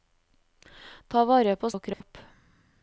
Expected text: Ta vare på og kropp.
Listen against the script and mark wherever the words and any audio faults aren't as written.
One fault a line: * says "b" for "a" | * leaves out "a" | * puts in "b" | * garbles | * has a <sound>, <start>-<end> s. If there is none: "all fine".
* has a dropout, 1.9-2.0 s